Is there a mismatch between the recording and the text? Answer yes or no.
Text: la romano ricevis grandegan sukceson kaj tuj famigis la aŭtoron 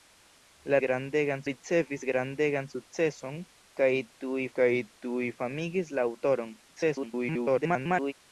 yes